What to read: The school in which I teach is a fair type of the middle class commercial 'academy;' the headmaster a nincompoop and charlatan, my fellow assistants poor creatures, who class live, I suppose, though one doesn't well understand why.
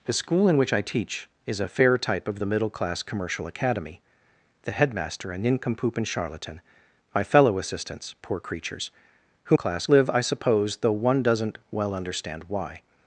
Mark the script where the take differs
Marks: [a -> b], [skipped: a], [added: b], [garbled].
The school in which I teach is a fair type of the middle class commercial 'academy;' the headmaster a nincompoop and charlatan, my fellow assistants poor creatures, who class live, I suppose, though one doesn't well understand why.